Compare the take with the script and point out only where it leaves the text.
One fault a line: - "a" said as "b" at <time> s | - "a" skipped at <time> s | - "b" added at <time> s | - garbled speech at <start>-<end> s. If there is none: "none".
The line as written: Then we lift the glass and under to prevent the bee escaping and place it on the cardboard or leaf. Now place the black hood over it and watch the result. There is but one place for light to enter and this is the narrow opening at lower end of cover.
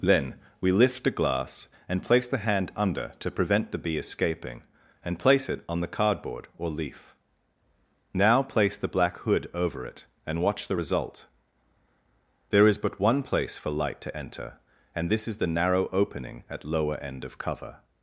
- "place the hand" added at 2.0 s